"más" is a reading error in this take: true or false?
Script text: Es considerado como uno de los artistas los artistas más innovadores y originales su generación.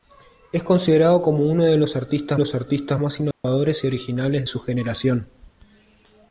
false